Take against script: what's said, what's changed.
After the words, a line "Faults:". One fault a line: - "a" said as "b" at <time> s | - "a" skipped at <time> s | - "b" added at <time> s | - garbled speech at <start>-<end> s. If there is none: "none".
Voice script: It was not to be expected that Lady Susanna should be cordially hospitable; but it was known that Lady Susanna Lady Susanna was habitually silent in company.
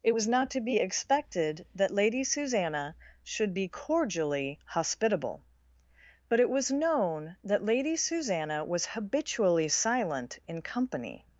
It was not to be expected that Lady Susanna should be cordially hospitable; but it was known that Lady Susanna was habitually silent in company.
Faults:
- "Lady Susanna" skipped at 8.7 s